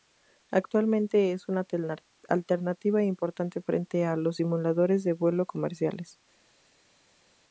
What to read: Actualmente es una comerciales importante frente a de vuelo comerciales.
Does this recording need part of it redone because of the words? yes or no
yes